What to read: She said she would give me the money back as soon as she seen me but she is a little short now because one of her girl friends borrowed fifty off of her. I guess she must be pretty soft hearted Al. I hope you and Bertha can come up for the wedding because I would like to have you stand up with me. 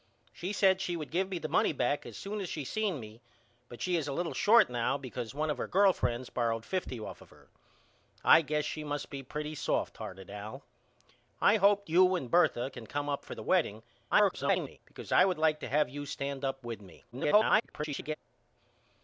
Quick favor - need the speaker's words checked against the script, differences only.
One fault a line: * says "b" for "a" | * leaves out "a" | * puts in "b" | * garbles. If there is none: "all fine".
* garbles
* garbles